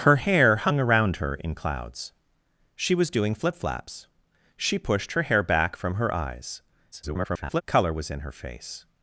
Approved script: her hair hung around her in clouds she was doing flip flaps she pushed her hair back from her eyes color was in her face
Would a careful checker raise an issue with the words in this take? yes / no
yes